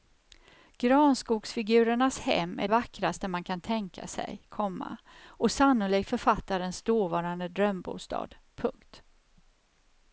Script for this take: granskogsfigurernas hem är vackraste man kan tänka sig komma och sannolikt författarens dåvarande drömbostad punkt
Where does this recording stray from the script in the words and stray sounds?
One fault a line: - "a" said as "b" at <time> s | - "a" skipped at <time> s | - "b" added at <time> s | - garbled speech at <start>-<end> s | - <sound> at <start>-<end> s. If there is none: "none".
none